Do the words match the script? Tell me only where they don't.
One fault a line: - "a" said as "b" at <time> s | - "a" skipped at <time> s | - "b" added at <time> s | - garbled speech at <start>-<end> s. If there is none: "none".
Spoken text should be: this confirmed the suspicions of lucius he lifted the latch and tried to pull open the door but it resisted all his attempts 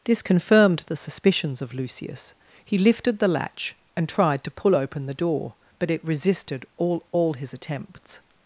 - "all" added at 7.1 s